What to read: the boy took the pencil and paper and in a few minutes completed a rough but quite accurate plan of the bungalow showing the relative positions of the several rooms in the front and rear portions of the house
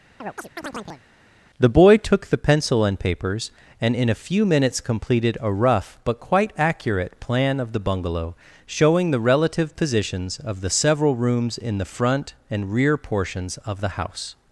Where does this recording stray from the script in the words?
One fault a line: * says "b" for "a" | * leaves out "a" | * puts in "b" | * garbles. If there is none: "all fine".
* says "papers" for "paper"